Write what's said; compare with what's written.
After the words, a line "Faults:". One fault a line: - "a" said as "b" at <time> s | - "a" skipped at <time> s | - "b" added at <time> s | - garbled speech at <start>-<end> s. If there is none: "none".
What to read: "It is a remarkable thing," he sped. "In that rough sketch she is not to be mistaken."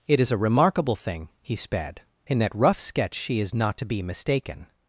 "It is a remarkable thing," he sped. "In that rough sketch she is not to be mistaken."
Faults:
none